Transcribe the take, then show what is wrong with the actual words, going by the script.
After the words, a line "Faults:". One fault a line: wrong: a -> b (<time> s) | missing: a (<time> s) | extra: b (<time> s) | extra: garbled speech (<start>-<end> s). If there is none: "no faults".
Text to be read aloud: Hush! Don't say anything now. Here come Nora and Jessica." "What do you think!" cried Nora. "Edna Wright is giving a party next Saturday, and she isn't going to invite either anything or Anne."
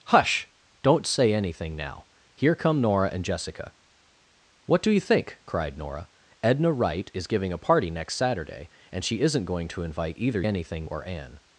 Hush! Don't say anything now. Here come Nora and Jessica." "What do you think!" cried Nora. "Edna Wright is giving a party next Saturday, and she isn't going to invite either anything or Anne."
Faults:
no faults